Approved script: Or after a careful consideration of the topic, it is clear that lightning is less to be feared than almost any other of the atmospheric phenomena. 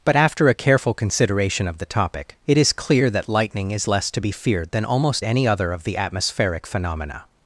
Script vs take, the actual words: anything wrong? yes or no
yes